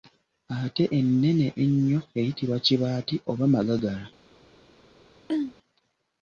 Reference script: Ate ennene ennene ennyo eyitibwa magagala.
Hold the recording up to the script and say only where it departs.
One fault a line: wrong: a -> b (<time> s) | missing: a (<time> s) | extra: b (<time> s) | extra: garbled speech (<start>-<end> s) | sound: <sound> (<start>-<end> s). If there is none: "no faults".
missing: ennene (1.5 s)
extra: kibaati oba (2.6 s)
sound: throat clearing (5.3-5.5 s)